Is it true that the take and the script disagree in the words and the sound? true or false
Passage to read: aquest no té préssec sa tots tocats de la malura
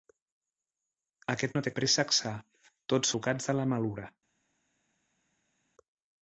false